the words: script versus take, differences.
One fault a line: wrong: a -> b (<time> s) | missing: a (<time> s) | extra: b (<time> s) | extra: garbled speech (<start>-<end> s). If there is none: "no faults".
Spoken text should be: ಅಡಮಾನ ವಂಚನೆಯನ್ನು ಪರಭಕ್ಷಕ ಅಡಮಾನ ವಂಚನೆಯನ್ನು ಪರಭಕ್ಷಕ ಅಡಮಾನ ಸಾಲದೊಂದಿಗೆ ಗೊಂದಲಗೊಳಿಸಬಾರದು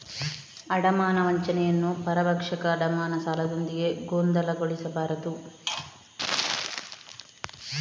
missing: ವಂಚನೆಯನ್ನು ಪರಭಕ್ಷಕ ಅಡಮಾನ (3.1 s)